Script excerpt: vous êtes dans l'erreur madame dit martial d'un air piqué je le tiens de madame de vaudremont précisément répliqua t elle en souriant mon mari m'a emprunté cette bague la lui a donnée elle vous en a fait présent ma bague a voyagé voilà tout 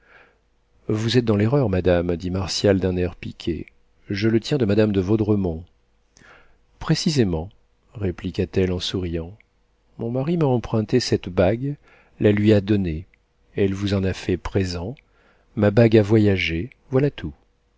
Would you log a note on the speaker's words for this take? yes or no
no